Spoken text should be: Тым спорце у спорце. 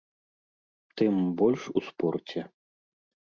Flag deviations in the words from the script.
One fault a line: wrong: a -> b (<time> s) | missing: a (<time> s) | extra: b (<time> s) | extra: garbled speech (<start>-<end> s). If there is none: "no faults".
wrong: спорце -> больш (1.4 s)